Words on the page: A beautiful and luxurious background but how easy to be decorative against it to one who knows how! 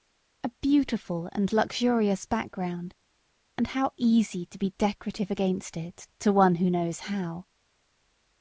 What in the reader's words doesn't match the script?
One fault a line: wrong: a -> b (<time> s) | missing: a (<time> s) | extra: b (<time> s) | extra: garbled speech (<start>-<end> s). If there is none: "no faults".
wrong: but -> and (3.6 s)